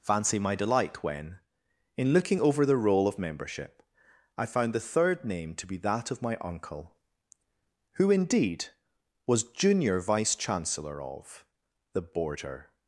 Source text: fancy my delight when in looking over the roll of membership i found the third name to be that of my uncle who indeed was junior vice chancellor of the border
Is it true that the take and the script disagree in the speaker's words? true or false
false